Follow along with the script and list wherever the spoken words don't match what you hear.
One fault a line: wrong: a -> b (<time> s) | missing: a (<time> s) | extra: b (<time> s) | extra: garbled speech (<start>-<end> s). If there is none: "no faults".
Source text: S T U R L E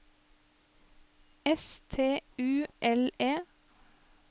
missing: R (2.7 s)